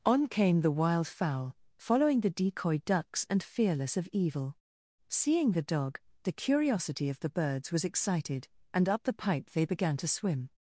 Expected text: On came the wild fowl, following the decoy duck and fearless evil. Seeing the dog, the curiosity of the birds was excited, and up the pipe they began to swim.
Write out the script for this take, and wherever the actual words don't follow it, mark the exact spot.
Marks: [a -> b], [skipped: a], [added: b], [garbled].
On came the wild fowl, following the decoy [duck -> ducks] and fearless [added: of] evil. Seeing the dog, the curiosity of the birds was excited, and up the pipe they began to swim.